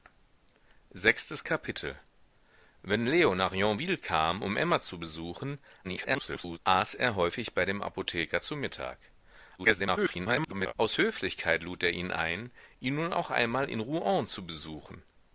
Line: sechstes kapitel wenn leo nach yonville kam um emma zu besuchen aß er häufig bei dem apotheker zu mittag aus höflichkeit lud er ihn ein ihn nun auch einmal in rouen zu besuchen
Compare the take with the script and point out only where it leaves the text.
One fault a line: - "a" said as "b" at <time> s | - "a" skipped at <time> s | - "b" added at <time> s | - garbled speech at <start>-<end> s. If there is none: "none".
- garbled speech at 5.8-6.6 s
- garbled speech at 9.6-10.7 s